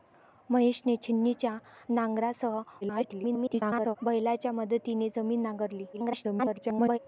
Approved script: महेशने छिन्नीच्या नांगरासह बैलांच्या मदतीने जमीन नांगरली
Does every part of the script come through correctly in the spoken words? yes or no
no